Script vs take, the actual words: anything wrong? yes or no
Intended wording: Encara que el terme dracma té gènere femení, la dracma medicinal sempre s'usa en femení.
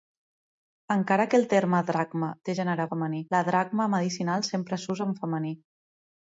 no